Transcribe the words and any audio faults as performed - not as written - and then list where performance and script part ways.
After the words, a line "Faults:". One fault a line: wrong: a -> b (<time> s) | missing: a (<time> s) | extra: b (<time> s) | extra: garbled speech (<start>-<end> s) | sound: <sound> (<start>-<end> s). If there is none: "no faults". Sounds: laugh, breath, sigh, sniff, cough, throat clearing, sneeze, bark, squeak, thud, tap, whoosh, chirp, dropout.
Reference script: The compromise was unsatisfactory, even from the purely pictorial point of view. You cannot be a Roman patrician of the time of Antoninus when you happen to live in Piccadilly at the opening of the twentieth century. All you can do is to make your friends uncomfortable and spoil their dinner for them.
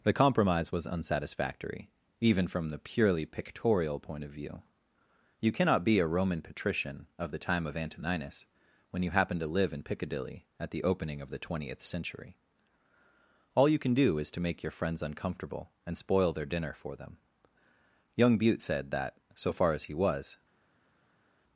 The compromise was unsatisfactory, even from the purely pictorial point of view. You cannot be a Roman patrician of the time of Antoninus when you happen to live in Piccadilly at the opening of the twentieth century. All you can do is to make your friends uncomfortable and spoil their dinner for them. Young Bute said that, so far as he was
Faults:
extra: Young Bute said that so far as he was (18.1 s)